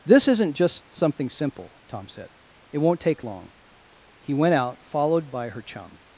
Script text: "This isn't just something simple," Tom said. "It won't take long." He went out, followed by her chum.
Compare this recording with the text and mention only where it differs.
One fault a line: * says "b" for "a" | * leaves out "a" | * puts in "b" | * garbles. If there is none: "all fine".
all fine